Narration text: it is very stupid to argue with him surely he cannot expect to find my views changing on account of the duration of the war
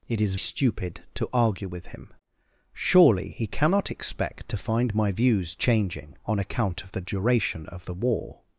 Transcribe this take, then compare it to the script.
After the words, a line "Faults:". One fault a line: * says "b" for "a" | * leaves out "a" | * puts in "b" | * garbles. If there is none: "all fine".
it is stupid to argue with him surely he cannot expect to find my views changing on account of the duration of the war
Faults:
* leaves out "very"